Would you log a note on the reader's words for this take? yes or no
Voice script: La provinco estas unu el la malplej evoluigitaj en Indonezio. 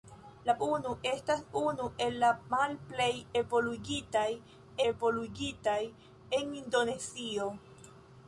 yes